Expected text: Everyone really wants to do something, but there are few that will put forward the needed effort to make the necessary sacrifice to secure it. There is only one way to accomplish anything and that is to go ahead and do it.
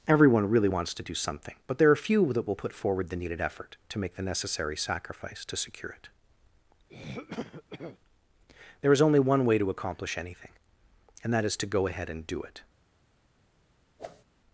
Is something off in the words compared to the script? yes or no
no